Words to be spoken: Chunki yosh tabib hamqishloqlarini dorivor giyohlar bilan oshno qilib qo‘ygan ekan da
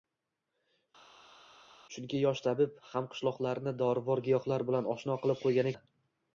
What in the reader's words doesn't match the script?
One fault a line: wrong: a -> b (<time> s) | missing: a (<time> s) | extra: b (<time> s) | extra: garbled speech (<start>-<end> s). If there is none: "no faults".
missing: ekan (5.7 s)